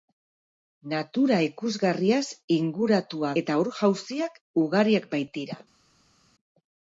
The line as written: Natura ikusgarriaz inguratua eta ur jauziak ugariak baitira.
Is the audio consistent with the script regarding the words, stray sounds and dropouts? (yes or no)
yes